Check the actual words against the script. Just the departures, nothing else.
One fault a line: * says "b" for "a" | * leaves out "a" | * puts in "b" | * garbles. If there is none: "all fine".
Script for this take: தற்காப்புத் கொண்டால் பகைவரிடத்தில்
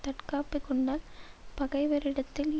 all fine